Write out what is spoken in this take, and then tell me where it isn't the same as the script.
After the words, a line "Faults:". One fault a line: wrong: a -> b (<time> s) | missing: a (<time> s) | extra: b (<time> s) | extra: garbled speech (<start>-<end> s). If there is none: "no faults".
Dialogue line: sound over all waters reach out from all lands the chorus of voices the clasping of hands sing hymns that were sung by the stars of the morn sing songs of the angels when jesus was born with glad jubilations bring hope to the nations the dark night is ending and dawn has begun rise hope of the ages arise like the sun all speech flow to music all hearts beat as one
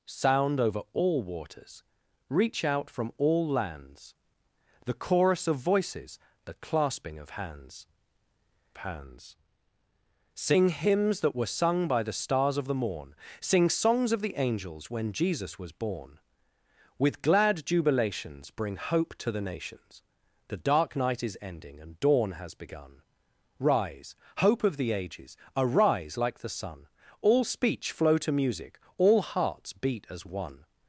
sound over all waters reach out from all lands the chorus of voices the clasping of hands hands sing hymns that were sung by the stars of the morn sing songs of the angels when jesus was born with glad jubilations bring hope to the nations the dark night is ending and dawn has begun rise hope of the ages arise like the sun all speech flow to music all hearts beat as one
Faults:
extra: hands (8.8 s)